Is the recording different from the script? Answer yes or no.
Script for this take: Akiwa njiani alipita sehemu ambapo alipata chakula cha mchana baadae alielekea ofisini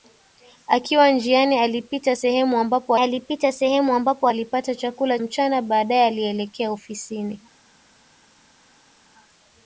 yes